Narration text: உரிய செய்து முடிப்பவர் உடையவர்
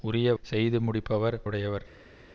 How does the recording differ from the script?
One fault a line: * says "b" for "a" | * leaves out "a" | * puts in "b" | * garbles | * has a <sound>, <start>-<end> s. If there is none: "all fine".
all fine